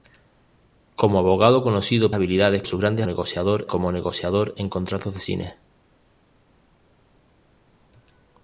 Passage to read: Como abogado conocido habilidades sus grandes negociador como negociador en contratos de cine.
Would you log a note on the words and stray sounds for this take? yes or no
no